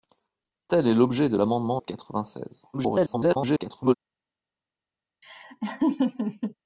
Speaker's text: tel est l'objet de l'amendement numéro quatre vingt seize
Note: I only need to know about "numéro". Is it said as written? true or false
false